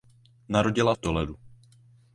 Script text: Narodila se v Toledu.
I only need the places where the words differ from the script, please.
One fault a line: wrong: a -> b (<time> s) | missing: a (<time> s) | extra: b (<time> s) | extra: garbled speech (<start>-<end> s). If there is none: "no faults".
missing: se (0.9 s)